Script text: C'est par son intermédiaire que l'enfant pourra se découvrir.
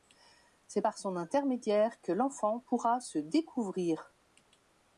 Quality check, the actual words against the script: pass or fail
pass